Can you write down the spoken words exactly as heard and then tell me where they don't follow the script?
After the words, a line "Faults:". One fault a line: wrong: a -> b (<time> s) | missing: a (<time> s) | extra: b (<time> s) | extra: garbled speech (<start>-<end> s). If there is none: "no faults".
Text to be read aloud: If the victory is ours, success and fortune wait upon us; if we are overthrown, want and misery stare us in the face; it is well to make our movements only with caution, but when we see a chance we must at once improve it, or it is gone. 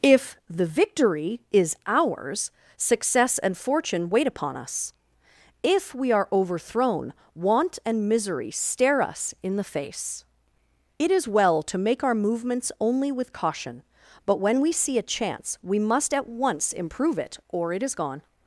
If the victory is ours, success and fortune wait upon us; if we are overthrown, want and misery stare us in the face; it is well to make our movements only with caution, but when we see a chance we must at once improve it, or it is gone.
Faults:
no faults